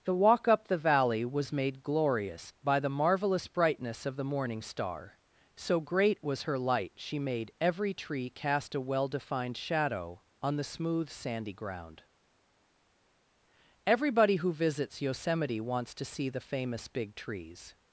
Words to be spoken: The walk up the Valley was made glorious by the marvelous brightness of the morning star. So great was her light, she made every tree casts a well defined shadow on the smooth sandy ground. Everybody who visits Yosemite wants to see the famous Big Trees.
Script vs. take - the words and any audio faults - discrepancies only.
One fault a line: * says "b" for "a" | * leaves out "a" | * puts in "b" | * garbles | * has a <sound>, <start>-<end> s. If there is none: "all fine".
* says "cast" for "casts"